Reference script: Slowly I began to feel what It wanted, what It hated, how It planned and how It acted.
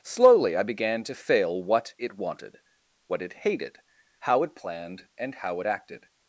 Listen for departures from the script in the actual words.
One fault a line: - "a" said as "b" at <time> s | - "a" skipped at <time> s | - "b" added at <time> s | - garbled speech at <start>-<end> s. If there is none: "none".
- "feel" said as "fail" at 1.1 s